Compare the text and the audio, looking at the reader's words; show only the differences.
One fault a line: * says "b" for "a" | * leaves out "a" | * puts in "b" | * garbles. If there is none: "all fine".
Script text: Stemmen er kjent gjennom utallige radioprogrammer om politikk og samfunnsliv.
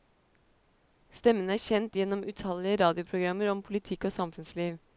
all fine